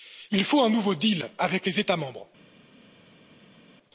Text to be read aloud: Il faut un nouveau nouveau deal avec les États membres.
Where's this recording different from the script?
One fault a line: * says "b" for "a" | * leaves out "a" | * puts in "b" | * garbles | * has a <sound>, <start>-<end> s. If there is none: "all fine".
* leaves out "nouveau"